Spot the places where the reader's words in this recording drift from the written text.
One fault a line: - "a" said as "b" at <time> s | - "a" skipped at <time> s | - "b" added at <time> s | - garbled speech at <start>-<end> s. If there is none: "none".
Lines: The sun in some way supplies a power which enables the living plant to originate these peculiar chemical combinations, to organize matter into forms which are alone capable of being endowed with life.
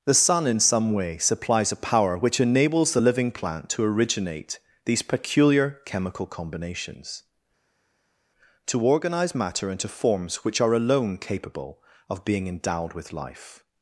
none